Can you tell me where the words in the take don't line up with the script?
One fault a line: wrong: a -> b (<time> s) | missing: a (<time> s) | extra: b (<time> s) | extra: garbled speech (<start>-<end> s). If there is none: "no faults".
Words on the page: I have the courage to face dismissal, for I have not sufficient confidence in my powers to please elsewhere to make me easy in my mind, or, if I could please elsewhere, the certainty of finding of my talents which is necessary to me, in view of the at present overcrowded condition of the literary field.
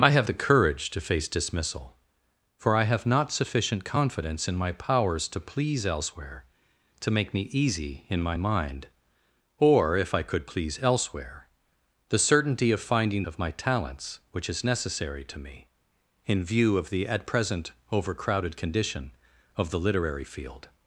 no faults